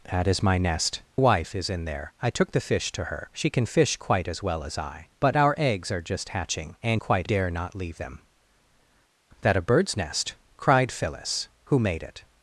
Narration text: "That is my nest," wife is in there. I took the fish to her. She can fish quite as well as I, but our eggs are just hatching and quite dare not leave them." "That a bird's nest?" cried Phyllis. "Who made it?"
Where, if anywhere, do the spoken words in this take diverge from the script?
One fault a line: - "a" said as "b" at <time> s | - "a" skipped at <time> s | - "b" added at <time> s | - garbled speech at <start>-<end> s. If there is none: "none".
none